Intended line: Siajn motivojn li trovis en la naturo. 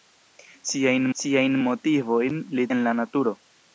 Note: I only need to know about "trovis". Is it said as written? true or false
false